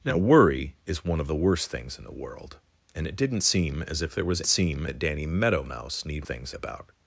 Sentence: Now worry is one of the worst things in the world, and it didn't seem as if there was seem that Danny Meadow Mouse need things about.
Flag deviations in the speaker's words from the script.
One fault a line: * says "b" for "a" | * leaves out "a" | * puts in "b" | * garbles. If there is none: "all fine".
all fine